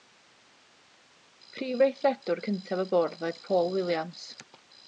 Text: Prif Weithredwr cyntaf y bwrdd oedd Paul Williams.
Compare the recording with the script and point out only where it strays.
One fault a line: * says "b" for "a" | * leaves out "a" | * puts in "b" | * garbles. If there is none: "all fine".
all fine